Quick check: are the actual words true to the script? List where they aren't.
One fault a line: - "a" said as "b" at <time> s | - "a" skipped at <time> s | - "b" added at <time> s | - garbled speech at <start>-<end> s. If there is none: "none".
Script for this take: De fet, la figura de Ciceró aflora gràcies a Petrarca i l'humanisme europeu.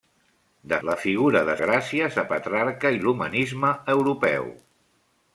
- "fet" skipped at 0.8 s
- "Ciceró aflora" skipped at 1.6 s